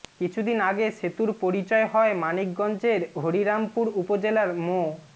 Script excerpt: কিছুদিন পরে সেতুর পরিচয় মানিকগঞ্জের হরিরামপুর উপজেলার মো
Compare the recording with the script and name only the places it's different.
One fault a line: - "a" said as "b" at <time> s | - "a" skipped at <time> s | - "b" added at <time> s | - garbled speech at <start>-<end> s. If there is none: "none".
- "পরে" said as "আগে" at 0.7 s
- "হয়" added at 1.9 s